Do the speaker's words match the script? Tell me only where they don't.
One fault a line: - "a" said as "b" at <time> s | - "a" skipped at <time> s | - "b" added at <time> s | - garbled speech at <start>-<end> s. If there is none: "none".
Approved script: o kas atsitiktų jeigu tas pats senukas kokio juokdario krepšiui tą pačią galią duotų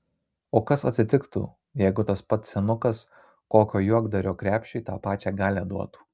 none